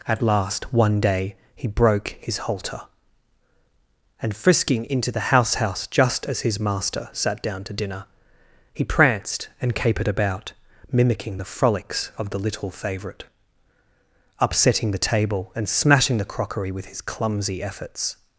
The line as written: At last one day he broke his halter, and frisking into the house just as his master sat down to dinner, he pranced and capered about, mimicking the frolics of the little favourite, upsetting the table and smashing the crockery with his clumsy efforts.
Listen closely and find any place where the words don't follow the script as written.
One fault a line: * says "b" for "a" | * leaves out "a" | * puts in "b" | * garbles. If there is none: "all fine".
* puts in "house"